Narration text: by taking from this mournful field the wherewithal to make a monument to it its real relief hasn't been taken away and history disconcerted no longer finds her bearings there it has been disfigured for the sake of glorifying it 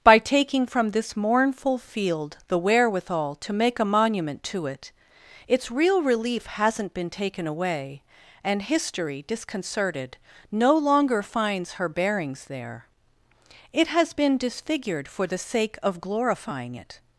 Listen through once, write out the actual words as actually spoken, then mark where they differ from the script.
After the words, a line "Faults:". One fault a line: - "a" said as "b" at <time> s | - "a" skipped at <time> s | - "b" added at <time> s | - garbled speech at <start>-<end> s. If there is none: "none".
by taking from this mournful field the wherewithal to make a monument to it its real relief hasn't been taken away and history disconcerted no longer finds her bearings there it has been disfigured for the sake of glorifying it
Faults:
none